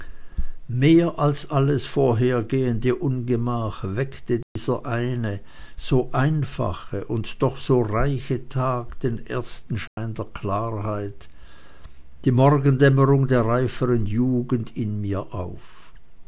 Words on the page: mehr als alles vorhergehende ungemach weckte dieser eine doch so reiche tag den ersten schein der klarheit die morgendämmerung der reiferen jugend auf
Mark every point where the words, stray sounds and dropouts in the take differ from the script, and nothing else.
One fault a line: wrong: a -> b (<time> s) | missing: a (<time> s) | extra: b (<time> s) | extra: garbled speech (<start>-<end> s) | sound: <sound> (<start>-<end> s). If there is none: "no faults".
sound: dropout (4.4-4.6 s)
extra: so einfache und (5.8 s)
sound: dropout (9.9-10.0 s)
extra: in mir (14.8 s)